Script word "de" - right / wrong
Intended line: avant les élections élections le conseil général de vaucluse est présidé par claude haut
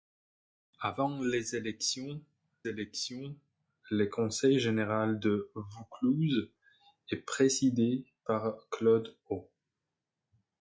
right